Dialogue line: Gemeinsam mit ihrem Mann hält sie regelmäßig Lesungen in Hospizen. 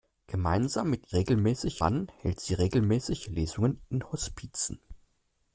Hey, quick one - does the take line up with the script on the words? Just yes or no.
no